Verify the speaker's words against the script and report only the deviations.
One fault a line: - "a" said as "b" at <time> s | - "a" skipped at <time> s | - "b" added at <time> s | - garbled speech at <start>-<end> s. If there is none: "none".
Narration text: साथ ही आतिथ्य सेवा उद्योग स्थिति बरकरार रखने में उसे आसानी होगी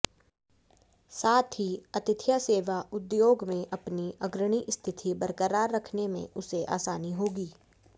- "में अपनी अग्रणी" added at 3.5 s